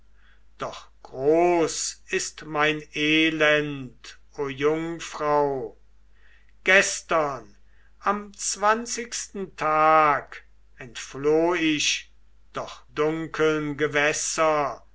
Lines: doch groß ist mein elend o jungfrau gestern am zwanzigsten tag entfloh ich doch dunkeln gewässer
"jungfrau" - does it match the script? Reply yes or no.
yes